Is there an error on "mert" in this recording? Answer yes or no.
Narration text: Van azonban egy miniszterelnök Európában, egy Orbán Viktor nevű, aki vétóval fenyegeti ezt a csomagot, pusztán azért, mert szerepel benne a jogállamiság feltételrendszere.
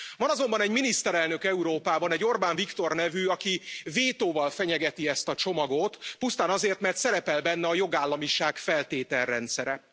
no